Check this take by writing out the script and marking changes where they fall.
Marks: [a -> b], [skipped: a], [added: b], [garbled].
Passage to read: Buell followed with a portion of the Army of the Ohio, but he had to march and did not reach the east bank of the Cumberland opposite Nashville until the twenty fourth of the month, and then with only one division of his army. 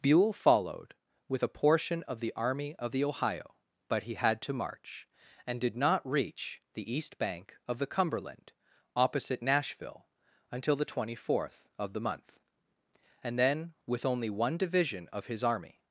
Buell followed with a portion of the Army of the Ohio, but he had to march and did not reach the east bank of the Cumberland opposite Nashville until the twenty fourth of the month, and then with only one division of his army.